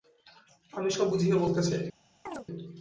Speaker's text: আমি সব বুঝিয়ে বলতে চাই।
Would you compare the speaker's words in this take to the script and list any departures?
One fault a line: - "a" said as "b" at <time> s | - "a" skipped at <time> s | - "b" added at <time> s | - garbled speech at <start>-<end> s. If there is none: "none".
none